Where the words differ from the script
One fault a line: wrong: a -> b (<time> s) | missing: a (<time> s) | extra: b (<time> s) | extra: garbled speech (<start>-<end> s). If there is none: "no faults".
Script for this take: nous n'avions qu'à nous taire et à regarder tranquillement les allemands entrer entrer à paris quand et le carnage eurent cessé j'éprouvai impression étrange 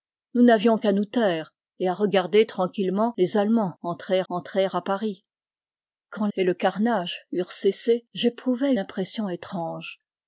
no faults